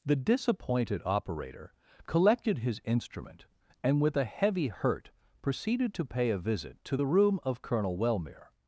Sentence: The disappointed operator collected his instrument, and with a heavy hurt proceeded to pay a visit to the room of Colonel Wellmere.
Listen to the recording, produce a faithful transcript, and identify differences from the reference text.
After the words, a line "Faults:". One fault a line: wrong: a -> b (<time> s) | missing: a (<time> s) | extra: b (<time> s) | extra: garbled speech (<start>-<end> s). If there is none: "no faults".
The disappointed operator collected his instrument, and with a heavy hurt proceeded to pay a visit to the room of Colonel Wellmere.
Faults:
no faults